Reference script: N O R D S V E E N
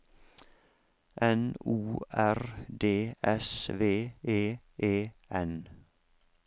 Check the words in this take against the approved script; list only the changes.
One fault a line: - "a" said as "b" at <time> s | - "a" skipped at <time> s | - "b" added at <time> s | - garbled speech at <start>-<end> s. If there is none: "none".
none